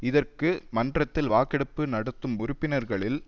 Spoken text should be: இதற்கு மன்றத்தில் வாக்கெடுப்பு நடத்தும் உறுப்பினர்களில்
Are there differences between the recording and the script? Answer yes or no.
no